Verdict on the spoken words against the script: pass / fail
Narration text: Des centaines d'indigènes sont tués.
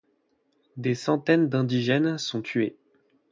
pass